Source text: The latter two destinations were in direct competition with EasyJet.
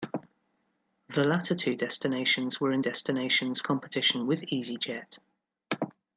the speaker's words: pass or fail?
fail